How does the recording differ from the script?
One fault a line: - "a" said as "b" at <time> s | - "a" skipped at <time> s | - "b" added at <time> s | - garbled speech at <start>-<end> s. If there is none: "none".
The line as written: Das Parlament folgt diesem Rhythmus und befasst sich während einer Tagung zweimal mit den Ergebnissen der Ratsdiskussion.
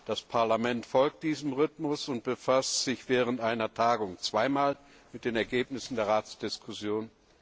none